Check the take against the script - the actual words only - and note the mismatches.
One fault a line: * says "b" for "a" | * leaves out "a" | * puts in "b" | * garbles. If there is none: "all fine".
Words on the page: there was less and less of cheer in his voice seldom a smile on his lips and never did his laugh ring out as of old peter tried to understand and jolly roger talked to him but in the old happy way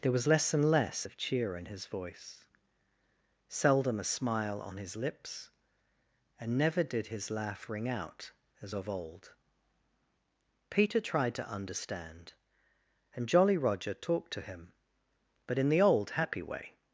all fine